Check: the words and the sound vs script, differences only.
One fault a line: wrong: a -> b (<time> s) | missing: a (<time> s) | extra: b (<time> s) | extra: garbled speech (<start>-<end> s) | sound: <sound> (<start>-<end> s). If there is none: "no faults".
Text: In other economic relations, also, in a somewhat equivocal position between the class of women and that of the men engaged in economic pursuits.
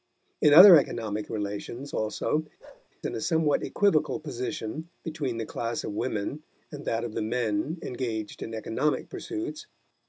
sound: bark (2.6-2.9 s)